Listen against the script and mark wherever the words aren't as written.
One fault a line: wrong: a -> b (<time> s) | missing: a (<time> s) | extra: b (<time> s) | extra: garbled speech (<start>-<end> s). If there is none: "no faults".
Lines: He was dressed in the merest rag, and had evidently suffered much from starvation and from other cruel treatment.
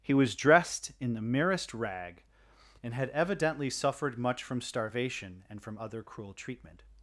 no faults